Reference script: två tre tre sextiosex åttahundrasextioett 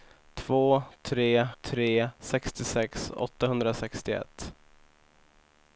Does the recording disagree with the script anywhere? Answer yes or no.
no